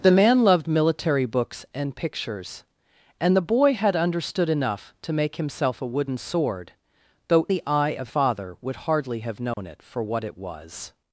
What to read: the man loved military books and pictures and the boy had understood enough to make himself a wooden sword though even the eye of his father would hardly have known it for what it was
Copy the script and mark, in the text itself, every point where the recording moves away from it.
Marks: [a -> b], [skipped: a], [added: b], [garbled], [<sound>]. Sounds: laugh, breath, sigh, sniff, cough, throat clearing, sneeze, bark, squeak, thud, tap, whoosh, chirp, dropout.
the man loved military books and pictures and the boy had understood enough to make himself a wooden sword though [skipped: even] the eye of [skipped: his] father would hardly have known [dropout] it for what it was